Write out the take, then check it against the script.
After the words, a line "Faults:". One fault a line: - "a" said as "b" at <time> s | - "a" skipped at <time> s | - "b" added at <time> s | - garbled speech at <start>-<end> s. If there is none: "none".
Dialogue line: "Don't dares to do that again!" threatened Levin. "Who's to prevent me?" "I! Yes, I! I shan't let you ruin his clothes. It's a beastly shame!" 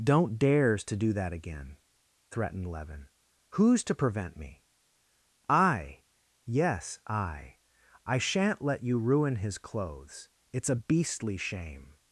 "Don't dares to do that again!" threatened Levin. "Who's to prevent me?" "I! Yes, I! I shan't let you ruin his clothes. It's a beastly shame!"
Faults:
none